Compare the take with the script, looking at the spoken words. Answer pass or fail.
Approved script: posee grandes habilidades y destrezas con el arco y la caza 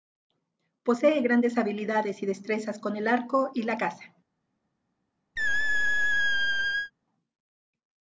pass